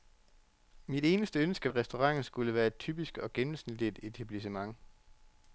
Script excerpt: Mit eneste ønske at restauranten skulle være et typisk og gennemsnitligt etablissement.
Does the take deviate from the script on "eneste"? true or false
false